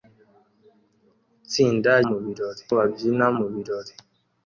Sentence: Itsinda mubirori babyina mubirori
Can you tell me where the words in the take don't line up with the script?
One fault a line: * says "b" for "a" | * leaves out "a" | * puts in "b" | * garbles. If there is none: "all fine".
all fine